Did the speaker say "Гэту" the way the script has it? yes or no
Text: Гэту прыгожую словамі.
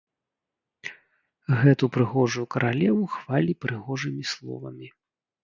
yes